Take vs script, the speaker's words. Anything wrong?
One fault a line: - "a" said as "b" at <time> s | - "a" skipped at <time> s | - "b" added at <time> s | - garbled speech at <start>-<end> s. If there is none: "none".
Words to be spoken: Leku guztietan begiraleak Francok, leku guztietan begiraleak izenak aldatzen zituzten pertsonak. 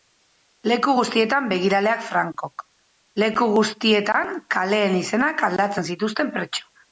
- "begiraleak" said as "kaleen" at 4.6 s